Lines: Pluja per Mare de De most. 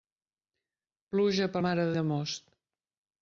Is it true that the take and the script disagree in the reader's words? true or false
false